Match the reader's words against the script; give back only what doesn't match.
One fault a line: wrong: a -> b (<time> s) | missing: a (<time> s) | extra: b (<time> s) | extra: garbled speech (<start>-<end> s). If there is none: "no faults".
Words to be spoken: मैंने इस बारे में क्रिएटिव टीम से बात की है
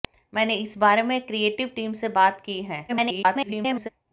extra: garbled speech (2.9-3.9 s)